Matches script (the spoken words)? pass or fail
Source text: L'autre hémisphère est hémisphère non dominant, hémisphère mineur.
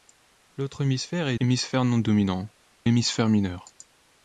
pass